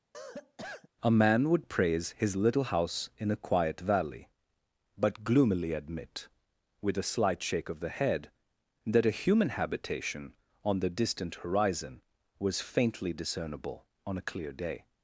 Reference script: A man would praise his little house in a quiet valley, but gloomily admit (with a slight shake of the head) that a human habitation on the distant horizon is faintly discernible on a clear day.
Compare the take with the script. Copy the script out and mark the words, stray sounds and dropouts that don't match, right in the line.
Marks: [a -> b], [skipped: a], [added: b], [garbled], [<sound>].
[cough] A man would praise his little house in a quiet valley, but gloomily admit (with a slight shake of the head) that a human habitation on the distant horizon [is -> was] faintly discernible on a clear day.